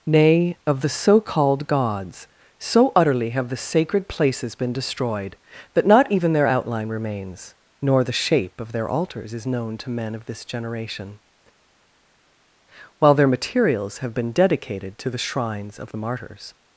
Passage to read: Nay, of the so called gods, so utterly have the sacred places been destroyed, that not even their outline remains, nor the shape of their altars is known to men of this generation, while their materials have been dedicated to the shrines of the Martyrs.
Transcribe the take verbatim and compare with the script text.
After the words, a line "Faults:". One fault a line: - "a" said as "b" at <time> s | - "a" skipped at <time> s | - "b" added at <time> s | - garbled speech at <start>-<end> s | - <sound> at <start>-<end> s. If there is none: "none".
Nay, of the so called gods, so utterly have the sacred places been destroyed, that not even their outline remains, nor the shape of their altars is known to men of this generation, while their materials have been dedicated to the shrines of the Martyrs.
Faults:
none